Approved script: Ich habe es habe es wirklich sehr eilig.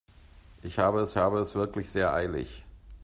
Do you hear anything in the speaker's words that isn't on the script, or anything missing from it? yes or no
no